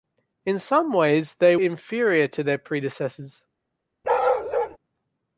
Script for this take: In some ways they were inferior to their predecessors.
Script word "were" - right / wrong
wrong